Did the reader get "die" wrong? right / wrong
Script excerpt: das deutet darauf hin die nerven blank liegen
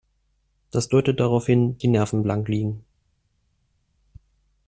right